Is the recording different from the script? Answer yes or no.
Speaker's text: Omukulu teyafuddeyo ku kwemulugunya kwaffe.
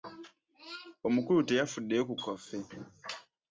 yes